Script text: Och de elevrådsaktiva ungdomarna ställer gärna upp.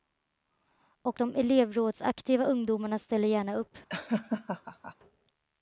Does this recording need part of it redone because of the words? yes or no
no